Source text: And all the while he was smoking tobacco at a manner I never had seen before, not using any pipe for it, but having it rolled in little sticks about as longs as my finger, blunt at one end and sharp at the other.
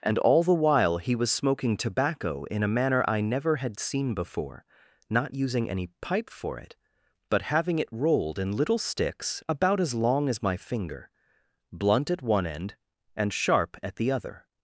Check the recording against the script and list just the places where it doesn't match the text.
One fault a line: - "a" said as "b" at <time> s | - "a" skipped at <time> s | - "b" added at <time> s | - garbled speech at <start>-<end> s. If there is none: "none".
- "at" said as "in" at 2.5 s
- "longs" said as "long" at 9.9 s